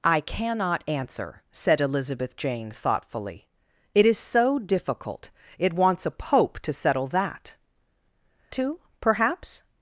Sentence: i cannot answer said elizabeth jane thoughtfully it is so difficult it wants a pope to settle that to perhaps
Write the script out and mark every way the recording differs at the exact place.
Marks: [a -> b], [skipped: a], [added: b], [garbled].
i cannot answer said elizabeth jane thoughtfully it is so difficult it wants a pope to settle that to perhaps